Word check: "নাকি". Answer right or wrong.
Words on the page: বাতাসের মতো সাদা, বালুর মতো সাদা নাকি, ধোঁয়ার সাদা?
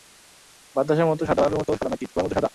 right